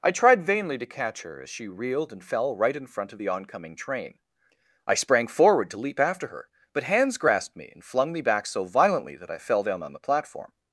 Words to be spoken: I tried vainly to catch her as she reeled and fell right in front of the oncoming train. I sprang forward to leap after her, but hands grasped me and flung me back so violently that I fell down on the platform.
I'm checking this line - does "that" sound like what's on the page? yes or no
yes